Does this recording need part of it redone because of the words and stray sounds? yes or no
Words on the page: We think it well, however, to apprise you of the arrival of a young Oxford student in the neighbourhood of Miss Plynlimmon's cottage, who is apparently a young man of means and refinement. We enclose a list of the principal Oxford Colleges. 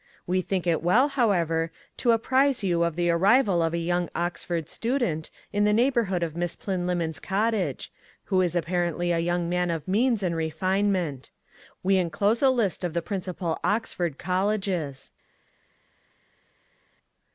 no